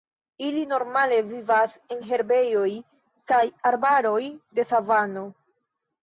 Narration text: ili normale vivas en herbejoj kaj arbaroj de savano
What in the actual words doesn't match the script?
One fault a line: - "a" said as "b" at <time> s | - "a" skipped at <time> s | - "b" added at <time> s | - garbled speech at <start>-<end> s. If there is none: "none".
none